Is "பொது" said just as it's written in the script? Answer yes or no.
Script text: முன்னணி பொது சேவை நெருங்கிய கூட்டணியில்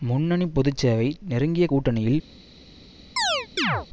yes